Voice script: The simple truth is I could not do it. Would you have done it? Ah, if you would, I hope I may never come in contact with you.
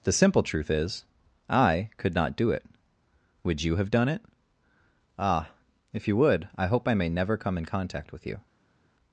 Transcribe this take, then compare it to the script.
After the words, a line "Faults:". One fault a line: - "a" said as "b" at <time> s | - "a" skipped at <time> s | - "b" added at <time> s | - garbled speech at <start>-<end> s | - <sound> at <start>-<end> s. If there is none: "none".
The simple truth is I could not do it. Would you have done it? Ah, if you would, I hope I may never come in contact with you.
Faults:
none